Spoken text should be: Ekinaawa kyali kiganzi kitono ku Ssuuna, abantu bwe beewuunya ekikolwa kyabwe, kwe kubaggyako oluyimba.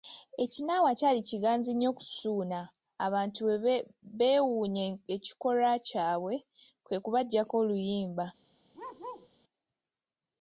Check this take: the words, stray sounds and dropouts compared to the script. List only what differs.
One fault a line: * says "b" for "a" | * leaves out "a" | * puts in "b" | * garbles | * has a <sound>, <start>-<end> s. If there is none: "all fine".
* says "nnyo" for "kitono"
* has a bark, 8.7-9.3 s